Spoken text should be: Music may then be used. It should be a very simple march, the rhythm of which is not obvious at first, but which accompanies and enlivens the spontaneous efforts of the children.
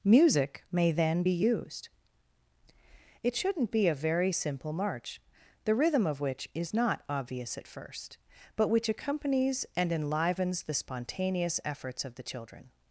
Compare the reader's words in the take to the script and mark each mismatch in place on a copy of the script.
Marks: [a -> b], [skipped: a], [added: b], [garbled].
Music may then be used. It [should -> shouldn't] be a very simple march, the rhythm of which is not obvious at first, but which accompanies and enlivens the spontaneous efforts of the children.